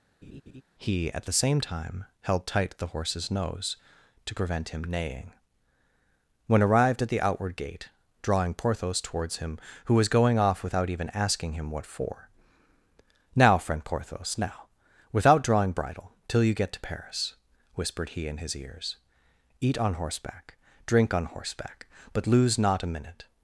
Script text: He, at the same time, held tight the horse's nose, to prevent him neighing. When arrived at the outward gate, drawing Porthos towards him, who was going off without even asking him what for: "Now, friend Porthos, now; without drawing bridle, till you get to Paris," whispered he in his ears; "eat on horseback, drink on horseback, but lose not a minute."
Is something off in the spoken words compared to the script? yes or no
no